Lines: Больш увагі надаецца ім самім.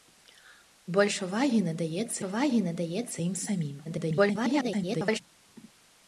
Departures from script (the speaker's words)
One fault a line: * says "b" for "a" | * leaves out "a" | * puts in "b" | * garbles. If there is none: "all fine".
* puts in "увагі надаецца"
* garbles